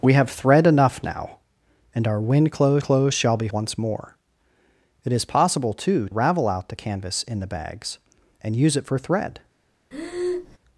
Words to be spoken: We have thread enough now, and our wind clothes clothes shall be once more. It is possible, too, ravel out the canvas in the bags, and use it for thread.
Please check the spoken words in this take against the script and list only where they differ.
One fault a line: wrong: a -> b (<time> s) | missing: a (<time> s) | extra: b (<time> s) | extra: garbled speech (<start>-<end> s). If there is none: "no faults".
no faults